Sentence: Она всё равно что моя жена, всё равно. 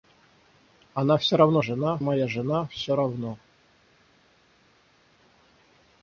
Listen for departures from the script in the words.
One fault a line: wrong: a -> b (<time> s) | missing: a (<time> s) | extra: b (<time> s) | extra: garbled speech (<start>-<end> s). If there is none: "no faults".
wrong: что -> жена (1.6 s)